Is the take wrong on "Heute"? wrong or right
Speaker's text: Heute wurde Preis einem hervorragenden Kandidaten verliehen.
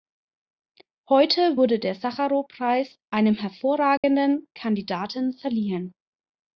right